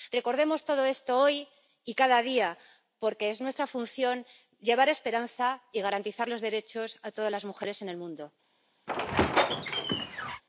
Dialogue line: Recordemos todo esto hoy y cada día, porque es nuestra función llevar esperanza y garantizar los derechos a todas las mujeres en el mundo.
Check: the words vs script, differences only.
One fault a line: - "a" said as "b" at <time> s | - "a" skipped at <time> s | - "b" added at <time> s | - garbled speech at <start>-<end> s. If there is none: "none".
none